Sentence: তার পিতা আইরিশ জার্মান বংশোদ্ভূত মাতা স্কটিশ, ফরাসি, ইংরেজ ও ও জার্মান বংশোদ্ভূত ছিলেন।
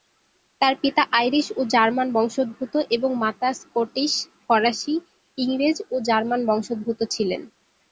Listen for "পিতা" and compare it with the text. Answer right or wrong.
right